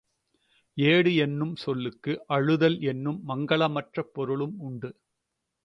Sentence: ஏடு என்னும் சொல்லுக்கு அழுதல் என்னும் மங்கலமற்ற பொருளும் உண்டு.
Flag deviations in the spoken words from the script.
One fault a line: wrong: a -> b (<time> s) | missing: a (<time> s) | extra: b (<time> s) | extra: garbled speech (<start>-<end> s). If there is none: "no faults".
no faults